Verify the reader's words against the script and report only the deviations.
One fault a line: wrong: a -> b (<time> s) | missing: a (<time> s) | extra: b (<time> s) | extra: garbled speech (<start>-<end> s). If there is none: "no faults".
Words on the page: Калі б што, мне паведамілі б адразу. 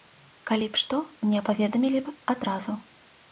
no faults